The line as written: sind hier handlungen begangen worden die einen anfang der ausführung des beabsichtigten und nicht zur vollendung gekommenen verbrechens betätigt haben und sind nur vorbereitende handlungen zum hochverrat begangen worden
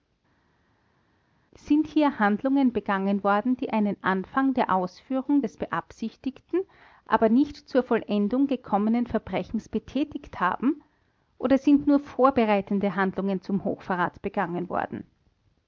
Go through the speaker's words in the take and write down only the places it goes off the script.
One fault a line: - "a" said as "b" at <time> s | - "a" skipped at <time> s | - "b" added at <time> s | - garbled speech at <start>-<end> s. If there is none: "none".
- "und" said as "aber" at 7.1 s
- "und" said as "oder" at 11.4 s